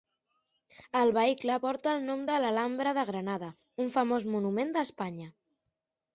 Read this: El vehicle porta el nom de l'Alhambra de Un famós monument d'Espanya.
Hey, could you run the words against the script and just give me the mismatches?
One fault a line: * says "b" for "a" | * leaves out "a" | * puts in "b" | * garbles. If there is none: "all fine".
* puts in "Granada"